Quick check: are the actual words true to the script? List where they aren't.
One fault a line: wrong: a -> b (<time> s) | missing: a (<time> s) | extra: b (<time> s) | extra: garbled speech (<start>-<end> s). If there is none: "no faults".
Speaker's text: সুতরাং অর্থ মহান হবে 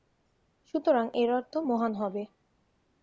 extra: এর (1.1 s)